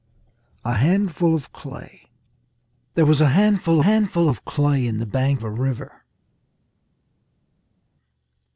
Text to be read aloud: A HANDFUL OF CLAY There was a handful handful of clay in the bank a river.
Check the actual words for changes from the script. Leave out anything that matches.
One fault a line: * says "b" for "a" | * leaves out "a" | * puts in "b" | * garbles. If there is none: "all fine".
all fine